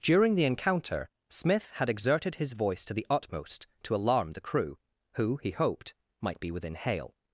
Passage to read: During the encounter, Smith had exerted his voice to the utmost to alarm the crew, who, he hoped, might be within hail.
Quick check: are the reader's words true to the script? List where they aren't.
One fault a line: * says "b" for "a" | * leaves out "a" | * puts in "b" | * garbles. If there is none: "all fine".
all fine